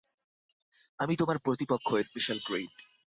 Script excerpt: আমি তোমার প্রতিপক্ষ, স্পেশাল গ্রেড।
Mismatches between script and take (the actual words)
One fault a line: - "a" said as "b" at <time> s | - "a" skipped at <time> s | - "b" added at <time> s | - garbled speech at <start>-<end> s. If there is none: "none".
none